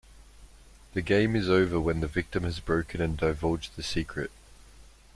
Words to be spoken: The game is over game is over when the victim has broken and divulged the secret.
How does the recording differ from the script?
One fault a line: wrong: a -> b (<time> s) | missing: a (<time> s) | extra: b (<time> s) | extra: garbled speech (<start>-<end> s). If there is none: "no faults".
missing: game is over (1.8 s)